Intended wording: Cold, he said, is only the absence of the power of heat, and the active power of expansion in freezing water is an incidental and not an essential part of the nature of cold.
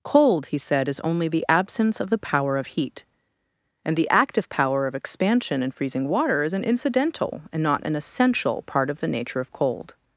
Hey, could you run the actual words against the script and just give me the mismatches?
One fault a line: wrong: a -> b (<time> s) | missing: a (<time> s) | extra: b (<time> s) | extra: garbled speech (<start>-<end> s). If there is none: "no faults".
no faults